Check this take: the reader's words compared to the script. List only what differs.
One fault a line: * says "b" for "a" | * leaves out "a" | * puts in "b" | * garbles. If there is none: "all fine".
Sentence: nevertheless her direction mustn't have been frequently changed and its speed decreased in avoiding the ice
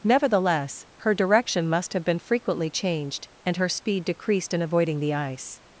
* says "must" for "mustn't"
* says "her" for "its"